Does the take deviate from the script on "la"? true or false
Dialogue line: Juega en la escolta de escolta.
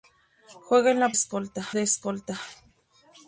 false